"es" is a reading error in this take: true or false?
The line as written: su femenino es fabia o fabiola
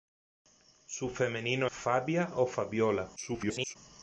true